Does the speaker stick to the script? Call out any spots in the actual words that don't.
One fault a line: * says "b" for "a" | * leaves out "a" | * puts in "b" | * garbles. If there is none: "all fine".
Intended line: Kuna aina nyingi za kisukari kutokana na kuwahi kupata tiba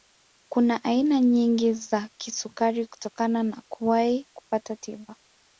all fine